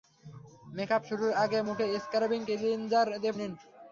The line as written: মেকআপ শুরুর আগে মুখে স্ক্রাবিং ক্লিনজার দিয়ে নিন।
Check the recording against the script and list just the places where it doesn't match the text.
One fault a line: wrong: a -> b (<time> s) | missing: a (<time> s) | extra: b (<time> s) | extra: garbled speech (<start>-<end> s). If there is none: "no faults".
no faults